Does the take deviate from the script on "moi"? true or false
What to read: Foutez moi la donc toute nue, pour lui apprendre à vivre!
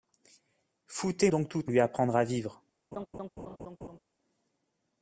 true